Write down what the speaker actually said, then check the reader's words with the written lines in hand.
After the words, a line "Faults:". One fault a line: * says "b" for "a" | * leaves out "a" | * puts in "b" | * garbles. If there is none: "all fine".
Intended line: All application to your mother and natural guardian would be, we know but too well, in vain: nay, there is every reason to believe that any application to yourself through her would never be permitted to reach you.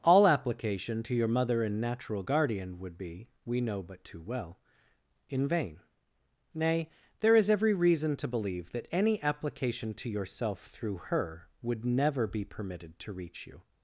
All application to your mother and natural guardian would be, we know but too well, in vain: nay, there is every reason to believe that any application to yourself through her would never be permitted to reach you.
Faults:
all fine